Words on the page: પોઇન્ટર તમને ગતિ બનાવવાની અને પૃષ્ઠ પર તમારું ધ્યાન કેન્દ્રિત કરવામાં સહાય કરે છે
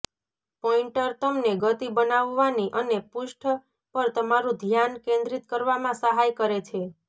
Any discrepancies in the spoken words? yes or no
no